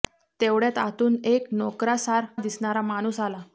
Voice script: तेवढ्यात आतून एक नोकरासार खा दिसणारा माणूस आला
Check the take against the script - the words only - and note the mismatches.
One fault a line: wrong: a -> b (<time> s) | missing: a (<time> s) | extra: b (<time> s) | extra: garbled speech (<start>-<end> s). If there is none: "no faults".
missing: खा (2.3 s)